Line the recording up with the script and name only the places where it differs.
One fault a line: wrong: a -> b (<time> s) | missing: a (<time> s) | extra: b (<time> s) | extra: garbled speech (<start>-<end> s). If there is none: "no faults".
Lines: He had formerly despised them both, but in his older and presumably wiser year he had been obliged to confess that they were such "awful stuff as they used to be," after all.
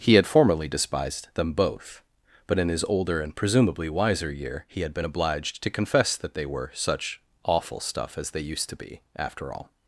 no faults